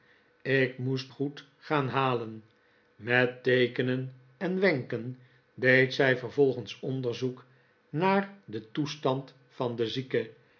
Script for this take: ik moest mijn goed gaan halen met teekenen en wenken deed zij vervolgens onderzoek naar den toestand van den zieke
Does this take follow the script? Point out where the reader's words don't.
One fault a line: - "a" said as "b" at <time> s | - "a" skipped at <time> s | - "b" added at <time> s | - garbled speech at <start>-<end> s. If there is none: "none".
- "mijn" skipped at 1.1 s